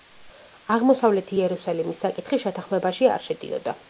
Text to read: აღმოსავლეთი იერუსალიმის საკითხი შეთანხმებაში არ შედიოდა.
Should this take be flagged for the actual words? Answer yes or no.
no